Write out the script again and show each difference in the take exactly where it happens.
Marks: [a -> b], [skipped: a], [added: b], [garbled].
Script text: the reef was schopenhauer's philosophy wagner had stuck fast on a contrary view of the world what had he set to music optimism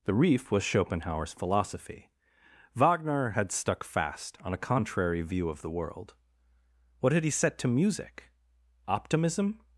the reef was schopenhauer's philosophy wagner had stuck fast on a contrary view of the world what had he set to music optimism